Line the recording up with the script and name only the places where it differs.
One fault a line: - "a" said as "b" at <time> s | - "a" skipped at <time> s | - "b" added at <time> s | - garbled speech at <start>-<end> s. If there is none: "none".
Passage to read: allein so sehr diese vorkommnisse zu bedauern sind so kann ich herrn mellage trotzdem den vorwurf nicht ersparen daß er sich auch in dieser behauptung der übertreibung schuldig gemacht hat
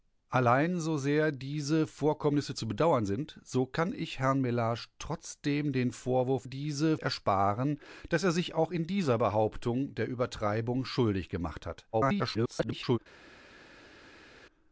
- "nicht" said as "diese" at 6.4 s
- garbled speech at 11.9-13.0 s